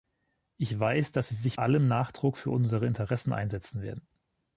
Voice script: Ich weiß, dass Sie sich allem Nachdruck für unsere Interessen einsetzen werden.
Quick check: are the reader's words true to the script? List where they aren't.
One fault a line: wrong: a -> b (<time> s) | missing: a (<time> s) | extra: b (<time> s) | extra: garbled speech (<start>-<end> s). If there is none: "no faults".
no faults